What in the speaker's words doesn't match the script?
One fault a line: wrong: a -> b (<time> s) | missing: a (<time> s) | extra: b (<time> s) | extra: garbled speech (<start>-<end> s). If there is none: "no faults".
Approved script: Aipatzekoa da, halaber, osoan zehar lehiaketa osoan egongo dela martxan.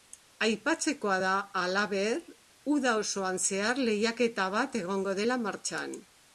extra: uda (2.8 s)
wrong: osoan -> bat (4.6 s)